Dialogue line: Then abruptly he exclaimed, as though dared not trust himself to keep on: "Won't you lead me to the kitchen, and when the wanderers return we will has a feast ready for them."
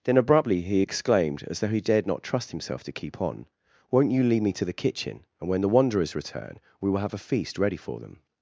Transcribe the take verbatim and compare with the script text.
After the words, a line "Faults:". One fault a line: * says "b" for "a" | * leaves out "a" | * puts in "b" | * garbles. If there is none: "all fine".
Then abruptly he exclaimed, as though he dared not trust himself to keep on: "Won't you lead me to the kitchen, and when the wanderers return we will have a feast ready for them."
Faults:
* puts in "he"
* says "have" for "has"